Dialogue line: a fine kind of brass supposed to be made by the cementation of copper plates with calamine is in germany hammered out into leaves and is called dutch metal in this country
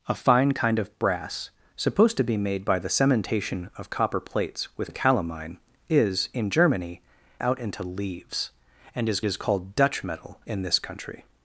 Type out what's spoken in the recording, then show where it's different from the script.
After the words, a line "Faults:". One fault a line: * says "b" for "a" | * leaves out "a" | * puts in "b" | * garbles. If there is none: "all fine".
a fine kind of brass supposed to be made by the cementation of copper plates with calamine is in germany out into leaves and is is called dutch metal in this country
Faults:
* leaves out "hammered"
* puts in "is"